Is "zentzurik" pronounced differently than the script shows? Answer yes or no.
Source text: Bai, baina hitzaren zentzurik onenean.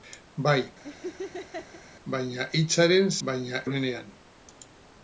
yes